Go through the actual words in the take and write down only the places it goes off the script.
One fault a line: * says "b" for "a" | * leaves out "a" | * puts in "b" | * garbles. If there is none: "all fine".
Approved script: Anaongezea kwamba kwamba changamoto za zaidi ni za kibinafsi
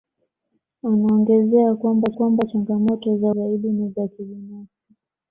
all fine